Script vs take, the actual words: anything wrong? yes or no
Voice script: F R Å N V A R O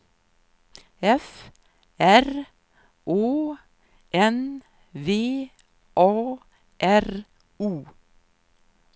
no